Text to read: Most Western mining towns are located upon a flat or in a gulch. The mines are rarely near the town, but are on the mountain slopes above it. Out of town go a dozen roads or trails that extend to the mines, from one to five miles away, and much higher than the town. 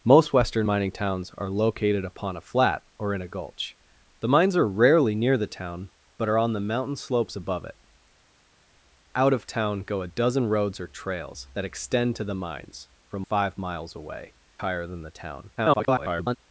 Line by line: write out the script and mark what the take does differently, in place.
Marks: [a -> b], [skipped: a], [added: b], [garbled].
Most Western mining towns are located upon a flat or in a gulch. The mines are rarely near the town, but are on the mountain slopes above it. Out of town go a dozen roads or trails that extend to the mines, from [skipped: one to] five miles away, [skipped: and much] higher than the town. [garbled]